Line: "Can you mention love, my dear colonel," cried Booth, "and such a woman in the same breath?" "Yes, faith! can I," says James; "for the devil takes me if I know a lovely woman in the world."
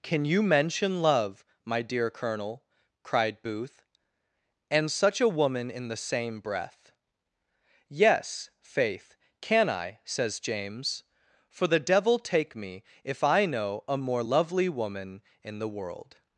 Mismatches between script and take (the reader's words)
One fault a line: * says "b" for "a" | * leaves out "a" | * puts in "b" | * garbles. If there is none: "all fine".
* says "take" for "takes"
* puts in "more"